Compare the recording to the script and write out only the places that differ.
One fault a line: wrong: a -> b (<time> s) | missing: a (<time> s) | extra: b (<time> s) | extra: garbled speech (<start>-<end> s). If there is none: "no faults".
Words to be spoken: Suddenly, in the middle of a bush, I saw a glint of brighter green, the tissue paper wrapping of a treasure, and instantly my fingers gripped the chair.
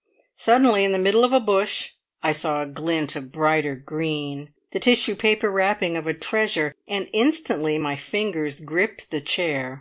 no faults